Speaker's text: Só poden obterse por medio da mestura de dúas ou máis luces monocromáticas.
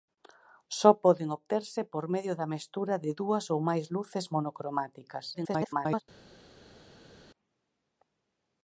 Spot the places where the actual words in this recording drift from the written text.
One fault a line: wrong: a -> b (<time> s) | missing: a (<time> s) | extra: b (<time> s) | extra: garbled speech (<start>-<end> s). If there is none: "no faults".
extra: garbled speech (5.3-6.0 s)